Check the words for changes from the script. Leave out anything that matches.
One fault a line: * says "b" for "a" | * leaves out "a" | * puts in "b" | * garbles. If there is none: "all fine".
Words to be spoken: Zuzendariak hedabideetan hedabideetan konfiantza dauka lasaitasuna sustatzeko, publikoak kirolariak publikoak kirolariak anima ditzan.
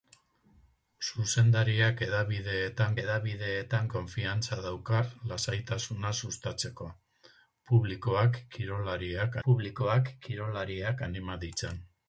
all fine